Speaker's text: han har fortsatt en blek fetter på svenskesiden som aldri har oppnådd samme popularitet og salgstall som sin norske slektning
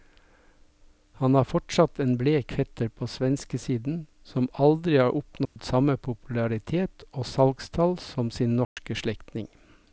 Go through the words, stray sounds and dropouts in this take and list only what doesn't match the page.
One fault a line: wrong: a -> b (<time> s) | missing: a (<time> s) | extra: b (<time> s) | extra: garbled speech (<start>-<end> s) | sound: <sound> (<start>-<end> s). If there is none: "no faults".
sound: dropout (5.4-5.6 s)
sound: dropout (8.6-8.8 s)